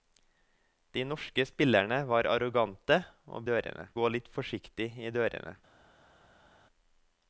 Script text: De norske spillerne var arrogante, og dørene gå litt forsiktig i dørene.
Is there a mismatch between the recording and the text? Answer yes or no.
no